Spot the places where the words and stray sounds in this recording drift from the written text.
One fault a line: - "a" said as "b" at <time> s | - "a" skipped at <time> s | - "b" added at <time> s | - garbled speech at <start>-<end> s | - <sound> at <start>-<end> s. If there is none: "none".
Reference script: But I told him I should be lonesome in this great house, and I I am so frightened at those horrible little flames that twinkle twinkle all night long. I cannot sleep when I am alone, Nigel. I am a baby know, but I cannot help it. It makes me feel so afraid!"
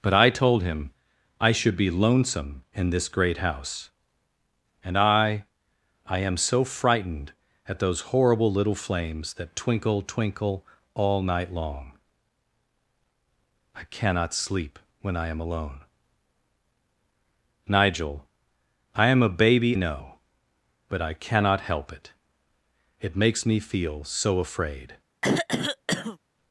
- throat clearing at 25.2-26.2 s